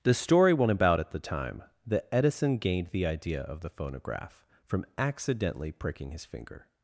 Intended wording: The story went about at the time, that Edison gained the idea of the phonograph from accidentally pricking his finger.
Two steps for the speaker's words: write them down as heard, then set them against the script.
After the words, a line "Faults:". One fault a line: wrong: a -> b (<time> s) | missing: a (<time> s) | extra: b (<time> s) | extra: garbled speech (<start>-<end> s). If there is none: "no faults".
The story went about at the time, that Edison gained the idea of the phonograph from accidentally pricking his finger.
Faults:
no faults